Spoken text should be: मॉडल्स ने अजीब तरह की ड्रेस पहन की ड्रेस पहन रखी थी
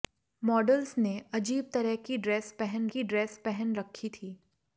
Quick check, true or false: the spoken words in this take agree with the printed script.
true